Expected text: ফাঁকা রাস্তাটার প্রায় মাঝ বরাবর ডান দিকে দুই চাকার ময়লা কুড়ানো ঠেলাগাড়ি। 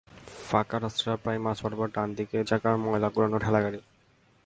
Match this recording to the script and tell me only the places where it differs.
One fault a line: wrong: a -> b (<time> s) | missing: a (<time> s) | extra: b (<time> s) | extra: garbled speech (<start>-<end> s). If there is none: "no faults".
missing: দুই (2.4 s)